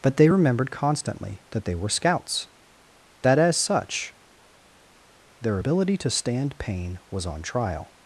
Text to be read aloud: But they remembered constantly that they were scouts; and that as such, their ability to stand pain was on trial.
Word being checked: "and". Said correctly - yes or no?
no